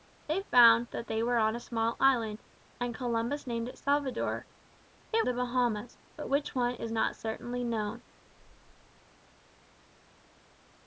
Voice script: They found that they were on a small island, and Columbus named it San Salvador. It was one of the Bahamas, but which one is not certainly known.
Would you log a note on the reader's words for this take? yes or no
yes